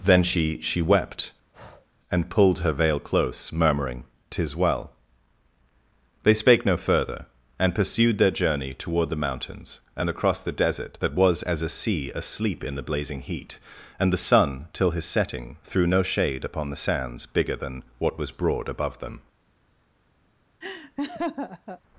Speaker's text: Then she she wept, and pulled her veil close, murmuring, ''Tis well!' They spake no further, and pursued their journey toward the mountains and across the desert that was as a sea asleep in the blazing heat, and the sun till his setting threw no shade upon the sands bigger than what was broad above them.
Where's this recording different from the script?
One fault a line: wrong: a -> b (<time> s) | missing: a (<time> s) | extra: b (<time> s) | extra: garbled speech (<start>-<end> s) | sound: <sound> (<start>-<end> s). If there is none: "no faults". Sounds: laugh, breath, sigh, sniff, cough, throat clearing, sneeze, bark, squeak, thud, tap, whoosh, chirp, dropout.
sound: breath (1.5-1.9 s)
sound: laugh (20.6-21.8 s)